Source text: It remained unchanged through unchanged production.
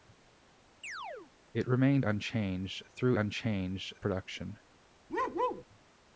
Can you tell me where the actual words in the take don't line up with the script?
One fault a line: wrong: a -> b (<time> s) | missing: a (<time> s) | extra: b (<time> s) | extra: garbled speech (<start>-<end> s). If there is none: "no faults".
no faults